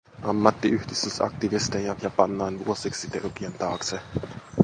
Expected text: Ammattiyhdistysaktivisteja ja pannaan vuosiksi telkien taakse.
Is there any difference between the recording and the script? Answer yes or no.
no